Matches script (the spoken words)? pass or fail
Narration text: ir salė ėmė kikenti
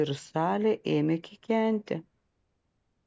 pass